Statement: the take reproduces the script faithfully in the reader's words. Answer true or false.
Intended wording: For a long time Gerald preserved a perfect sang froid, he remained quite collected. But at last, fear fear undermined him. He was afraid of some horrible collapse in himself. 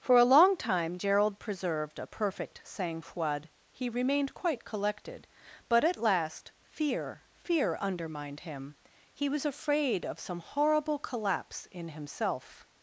true